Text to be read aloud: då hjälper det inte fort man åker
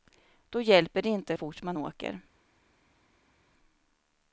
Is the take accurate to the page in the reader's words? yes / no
yes